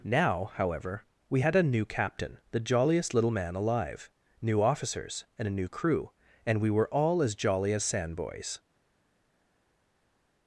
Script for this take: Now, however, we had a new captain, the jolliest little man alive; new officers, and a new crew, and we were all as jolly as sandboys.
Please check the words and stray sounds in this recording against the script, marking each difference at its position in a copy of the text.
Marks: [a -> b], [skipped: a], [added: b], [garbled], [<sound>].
Now, however, we had a new captain, the jolliest little man alive; new officers, and a new crew, and we were all as jolly as sandboys.